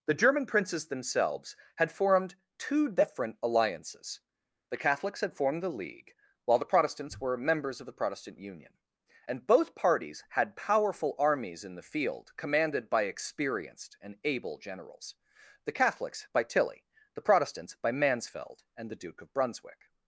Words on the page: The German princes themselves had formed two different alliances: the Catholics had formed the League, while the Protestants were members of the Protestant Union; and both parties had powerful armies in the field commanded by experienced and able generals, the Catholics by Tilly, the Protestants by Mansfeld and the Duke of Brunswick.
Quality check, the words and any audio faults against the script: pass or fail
pass